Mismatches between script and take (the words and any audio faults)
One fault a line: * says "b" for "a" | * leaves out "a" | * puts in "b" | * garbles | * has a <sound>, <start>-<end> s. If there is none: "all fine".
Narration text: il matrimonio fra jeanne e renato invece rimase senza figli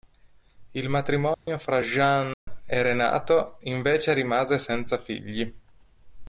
* has a dropout, 1.3-1.5 s
* has a dropout, 2.3-2.5 s